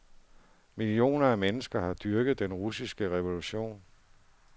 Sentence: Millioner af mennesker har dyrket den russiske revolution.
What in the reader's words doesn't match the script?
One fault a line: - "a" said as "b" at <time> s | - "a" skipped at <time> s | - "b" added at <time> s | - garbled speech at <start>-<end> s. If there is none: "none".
none